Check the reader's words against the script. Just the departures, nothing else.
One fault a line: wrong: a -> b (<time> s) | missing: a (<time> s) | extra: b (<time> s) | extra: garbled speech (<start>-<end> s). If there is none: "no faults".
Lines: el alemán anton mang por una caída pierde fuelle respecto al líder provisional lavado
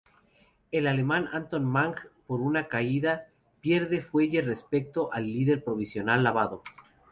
no faults